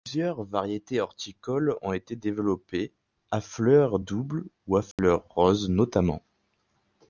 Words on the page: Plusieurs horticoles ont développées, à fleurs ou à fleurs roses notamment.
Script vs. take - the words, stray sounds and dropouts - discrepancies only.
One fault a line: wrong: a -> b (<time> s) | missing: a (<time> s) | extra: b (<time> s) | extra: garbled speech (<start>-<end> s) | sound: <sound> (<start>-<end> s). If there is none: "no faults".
extra: variétés (0.5 s)
extra: été (1.9 s)
extra: doubles (4.0 s)
sound: dropout (4.9-5.0 s)